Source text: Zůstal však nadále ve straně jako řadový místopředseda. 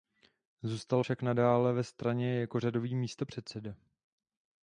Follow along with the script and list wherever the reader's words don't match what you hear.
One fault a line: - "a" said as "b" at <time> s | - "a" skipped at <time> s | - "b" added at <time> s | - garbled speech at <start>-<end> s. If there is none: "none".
none